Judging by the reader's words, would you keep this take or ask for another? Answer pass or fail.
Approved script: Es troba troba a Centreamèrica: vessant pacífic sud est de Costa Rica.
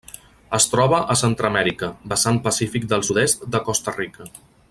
fail